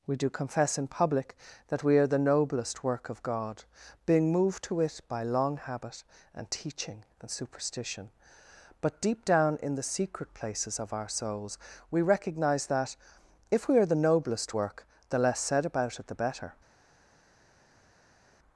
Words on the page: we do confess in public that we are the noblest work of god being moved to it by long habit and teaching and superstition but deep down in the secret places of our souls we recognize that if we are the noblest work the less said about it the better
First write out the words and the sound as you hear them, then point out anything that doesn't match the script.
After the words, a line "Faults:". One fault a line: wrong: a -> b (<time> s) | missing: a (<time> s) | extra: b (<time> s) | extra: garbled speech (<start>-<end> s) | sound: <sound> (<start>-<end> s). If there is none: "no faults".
we do confess in public that we are the noblest work of god being moved to it by long habit and teaching and superstition but deep down in the secret places of our souls we recognize that if we are the noblest work the less said about it the better
Faults:
no faults